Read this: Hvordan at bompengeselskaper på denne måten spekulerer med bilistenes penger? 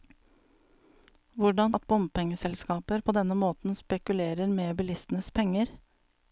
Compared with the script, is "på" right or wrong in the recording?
right